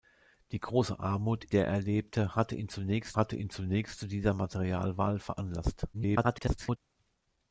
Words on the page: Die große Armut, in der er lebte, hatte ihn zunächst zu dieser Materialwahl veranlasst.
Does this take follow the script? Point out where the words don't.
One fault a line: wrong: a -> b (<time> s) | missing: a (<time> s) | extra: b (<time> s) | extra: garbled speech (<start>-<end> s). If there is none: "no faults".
missing: in (1.4 s)
extra: hatte ihn zunächst (3.2 s)
extra: garbled speech (5.9-6.8 s)